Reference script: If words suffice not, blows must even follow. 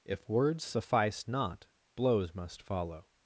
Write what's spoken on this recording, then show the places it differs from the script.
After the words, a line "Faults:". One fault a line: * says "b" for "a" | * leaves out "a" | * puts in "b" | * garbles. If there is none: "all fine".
If words suffice not, blows must follow.
Faults:
* leaves out "even"